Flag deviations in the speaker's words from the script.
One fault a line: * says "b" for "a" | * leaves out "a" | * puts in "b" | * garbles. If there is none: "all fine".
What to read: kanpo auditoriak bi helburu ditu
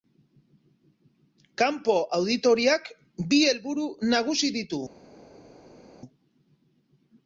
* puts in "nagusi"